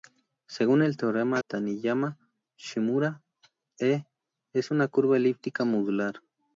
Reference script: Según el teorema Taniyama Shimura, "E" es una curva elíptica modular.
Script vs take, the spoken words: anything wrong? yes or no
no